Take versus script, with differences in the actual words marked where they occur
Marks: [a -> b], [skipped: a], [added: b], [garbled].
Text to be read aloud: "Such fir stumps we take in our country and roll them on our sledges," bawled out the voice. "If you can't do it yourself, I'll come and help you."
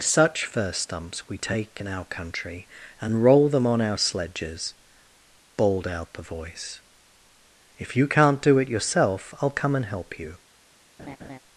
"Such fir stumps we take in our country and roll them on our sledges," bawled out the voice. "If you can't do it yourself, I'll come and help you."